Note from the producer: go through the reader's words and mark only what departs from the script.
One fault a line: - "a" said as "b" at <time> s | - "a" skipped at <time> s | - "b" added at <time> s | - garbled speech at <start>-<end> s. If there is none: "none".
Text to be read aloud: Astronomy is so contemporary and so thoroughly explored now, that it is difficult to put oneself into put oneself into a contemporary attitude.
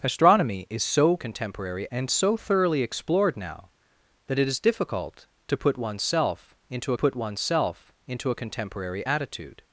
none